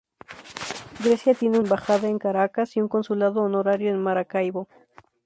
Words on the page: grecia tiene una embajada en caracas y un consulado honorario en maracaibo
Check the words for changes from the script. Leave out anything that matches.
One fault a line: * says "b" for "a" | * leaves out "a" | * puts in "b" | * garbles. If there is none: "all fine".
* leaves out "una"